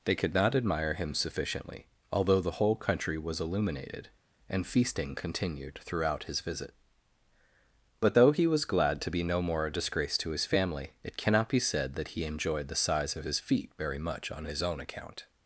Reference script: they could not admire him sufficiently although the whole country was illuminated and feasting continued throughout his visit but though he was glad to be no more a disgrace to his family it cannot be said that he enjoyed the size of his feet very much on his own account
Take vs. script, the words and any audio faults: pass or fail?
pass